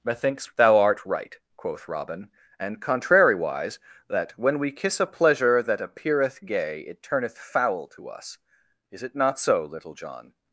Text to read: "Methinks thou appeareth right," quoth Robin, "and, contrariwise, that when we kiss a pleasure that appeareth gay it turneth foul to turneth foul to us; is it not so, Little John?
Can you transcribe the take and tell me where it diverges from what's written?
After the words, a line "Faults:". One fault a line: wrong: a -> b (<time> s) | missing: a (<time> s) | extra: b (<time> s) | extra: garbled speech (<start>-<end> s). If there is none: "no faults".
"Methinks thou art right," quoth Robin, "and, contrariwise, that when we kiss a pleasure that appeareth gay it turneth foul to us; is it not so, Little John?
Faults:
wrong: appeareth -> art (0.8 s)
missing: turneth foul to (8.1 s)